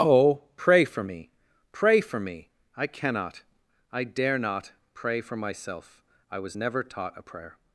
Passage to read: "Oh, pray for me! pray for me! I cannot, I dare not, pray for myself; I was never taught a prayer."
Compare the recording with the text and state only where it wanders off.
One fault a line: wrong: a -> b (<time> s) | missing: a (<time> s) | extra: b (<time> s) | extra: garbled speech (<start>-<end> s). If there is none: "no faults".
no faults